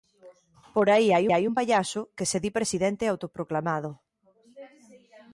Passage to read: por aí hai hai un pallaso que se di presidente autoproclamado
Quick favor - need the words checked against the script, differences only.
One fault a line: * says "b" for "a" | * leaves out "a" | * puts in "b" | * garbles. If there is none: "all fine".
all fine